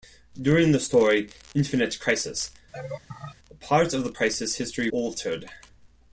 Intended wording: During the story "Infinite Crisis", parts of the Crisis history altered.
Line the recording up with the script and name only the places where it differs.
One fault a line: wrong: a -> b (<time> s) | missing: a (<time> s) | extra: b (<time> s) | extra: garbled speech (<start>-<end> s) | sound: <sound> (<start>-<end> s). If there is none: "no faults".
sound: laugh (2.7-3.4 s)